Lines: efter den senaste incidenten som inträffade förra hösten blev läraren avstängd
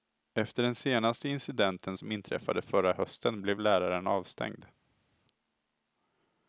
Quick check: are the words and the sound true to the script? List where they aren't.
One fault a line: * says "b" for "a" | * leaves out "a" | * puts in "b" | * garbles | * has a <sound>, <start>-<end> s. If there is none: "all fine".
all fine